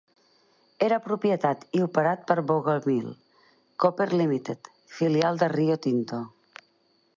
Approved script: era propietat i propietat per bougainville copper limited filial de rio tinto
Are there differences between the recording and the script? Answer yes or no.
yes